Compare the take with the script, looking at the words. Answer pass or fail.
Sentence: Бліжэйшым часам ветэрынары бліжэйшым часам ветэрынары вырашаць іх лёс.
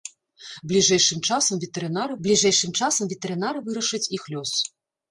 pass